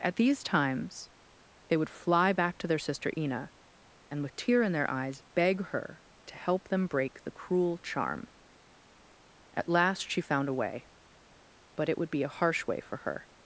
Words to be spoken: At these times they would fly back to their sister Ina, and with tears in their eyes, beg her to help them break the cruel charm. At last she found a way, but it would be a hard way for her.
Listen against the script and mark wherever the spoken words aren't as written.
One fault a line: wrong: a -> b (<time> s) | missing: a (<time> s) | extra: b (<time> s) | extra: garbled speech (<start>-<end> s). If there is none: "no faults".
wrong: tears -> tear (4.3 s)
wrong: hard -> harsh (12.3 s)